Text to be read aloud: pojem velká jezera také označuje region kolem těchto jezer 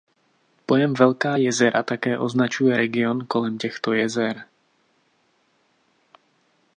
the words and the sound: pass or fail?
pass